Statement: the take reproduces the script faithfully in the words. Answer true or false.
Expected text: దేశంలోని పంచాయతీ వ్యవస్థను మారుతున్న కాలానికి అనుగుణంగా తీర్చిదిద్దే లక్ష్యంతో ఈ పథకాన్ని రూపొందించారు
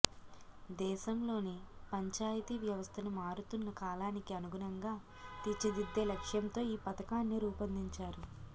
true